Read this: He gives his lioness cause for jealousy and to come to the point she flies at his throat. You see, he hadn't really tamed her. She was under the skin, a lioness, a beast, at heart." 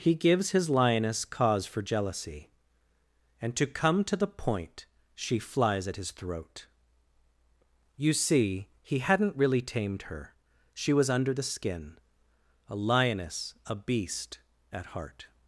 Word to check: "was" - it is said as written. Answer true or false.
true